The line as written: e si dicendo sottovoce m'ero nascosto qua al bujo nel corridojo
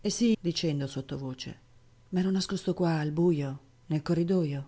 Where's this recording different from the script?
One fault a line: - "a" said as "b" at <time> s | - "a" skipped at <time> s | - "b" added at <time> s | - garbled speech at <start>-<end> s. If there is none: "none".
none